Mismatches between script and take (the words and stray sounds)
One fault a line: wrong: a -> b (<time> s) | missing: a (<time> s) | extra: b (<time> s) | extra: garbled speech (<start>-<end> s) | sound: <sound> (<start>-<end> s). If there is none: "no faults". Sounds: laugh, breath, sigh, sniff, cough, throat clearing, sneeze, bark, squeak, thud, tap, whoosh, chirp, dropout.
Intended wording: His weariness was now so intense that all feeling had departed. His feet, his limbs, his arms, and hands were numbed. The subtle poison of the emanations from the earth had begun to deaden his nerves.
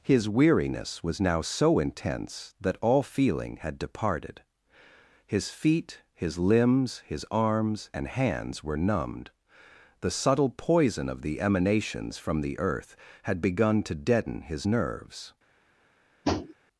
sound: tap (16.2-16.5 s)